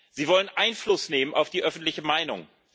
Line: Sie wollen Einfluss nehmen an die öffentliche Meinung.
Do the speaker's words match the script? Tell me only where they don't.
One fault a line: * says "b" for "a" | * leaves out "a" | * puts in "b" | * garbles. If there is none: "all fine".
* says "auf" for "an"